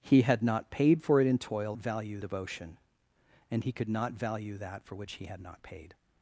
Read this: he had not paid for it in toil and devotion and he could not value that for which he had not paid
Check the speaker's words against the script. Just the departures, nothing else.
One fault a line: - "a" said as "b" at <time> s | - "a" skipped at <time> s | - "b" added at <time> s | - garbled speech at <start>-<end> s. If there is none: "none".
- "and" said as "value" at 1.8 s